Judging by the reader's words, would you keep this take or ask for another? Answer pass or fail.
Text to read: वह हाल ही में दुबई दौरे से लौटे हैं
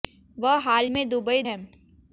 fail